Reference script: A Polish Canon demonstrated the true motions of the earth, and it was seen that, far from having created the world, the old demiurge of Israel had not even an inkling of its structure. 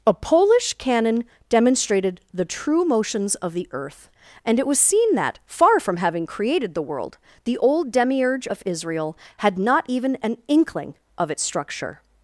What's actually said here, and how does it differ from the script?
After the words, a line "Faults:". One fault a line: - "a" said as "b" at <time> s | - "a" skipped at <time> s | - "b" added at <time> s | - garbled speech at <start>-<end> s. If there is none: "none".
A Polish Canon demonstrated the true motions of the earth, and it was seen that, far from having created the world, the old demiurge of Israel had not even an inkling of its structure.
Faults:
none